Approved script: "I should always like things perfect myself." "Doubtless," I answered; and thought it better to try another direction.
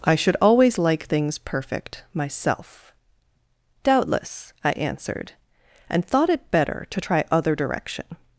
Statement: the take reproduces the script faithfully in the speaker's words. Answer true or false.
false